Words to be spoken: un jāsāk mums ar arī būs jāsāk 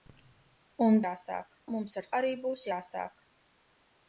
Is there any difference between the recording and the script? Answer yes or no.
no